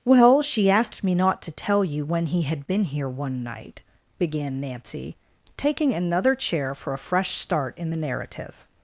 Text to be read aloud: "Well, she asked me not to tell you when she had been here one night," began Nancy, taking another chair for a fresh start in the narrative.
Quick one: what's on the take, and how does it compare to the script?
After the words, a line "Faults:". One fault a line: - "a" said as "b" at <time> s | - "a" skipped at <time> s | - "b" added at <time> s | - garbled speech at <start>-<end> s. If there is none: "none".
"Well, she asked me not to tell you when he had been here one night," began Nancy, taking another chair for a fresh start in the narrative.
Faults:
- "she" said as "he" at 2.3 s